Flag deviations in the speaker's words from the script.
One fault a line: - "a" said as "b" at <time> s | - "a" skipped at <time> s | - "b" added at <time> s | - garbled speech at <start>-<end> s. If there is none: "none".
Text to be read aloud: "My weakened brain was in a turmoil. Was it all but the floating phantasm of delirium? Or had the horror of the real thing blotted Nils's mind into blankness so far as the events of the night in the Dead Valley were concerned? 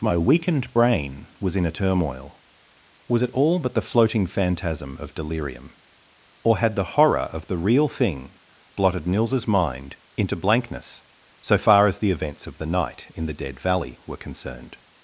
none